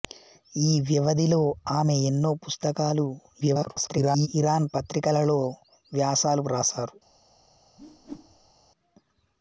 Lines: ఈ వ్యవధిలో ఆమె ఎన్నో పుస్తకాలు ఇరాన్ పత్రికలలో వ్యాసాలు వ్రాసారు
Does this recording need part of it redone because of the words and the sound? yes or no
yes